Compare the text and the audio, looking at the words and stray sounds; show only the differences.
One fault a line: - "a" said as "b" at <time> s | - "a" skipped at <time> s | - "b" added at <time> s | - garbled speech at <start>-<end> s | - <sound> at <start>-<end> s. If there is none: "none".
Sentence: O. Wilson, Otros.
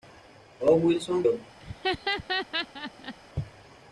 - laugh at 1.6-3.1 s